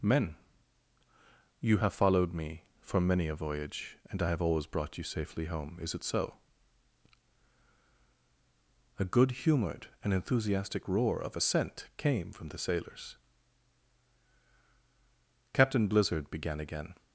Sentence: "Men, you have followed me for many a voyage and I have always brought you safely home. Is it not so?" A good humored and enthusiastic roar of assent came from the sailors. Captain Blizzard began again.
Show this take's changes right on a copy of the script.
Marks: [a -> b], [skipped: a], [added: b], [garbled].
"Men, you have followed me for many a voyage and I have always brought you safely home. Is it [skipped: not] so?" A good humored and enthusiastic roar of assent came from the sailors. Captain Blizzard began again.